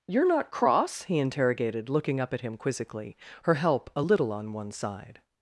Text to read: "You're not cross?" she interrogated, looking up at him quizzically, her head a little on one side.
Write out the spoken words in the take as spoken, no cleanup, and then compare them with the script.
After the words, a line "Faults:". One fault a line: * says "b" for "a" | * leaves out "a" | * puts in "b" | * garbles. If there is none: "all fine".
"You're not cross?" he interrogated, looking up at him quizzically, her help a little on one side.
Faults:
* says "he" for "she"
* says "help" for "head"